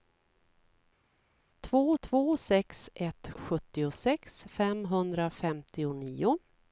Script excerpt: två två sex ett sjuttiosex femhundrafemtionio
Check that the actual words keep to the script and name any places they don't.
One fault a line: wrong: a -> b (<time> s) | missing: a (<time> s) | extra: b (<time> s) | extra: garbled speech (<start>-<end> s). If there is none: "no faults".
no faults